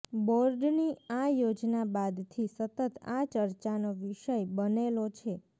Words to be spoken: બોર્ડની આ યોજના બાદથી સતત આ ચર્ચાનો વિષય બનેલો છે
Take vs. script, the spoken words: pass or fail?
pass